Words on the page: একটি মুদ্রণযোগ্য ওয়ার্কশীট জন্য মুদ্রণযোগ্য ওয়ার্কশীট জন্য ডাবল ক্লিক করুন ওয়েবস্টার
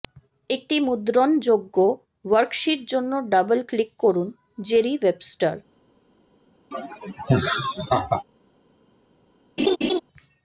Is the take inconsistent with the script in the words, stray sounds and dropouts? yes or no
yes